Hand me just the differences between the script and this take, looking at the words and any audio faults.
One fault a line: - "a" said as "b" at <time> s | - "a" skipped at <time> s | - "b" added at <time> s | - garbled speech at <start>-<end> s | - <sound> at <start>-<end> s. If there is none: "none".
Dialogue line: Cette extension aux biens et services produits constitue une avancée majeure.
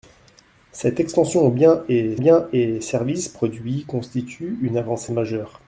- "biens et" added at 2.2 s